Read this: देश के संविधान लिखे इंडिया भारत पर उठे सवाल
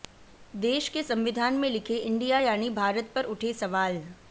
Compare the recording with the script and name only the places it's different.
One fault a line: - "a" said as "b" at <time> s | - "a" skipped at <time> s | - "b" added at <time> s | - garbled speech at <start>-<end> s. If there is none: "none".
- "में" added at 1.6 s
- "यानी" added at 2.4 s